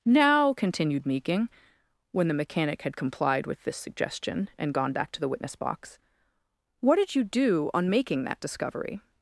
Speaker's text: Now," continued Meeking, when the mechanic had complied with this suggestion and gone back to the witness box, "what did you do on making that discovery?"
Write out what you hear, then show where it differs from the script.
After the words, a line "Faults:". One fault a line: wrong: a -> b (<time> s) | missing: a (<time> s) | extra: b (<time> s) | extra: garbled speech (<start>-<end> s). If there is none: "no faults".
Now," continued Meeking, when the mechanic had complied with this suggestion and gone back to the witness box, "what did you do on making that discovery?"
Faults:
no faults